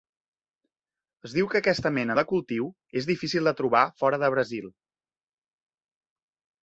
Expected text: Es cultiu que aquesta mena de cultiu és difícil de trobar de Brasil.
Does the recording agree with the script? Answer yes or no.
no